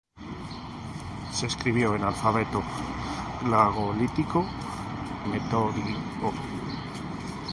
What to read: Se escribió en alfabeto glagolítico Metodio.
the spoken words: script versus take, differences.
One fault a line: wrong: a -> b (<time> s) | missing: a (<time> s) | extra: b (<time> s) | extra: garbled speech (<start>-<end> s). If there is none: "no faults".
no faults